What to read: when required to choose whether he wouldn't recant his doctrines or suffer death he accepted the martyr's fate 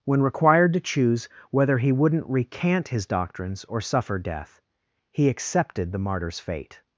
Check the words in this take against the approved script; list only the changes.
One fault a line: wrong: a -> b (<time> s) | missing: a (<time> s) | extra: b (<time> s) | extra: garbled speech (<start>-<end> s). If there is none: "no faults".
no faults